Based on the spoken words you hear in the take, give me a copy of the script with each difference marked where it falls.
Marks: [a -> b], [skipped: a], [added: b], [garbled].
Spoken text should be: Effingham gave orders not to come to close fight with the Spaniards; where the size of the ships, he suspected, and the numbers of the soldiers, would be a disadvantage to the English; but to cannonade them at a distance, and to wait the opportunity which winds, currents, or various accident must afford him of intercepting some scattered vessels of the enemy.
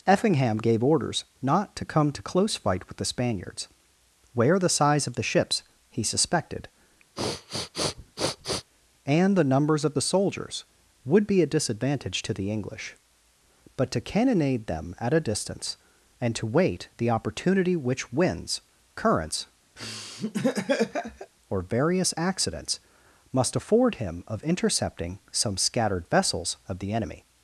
Effingham gave orders not to come to close fight with the Spaniards; where the size of the ships, he suspected, and the numbers of the soldiers, would be a disadvantage to the English; but to cannonade them at a distance, and to wait the opportunity which winds, currents, or various [accident -> accidents] must afford him of intercepting some scattered vessels of the enemy.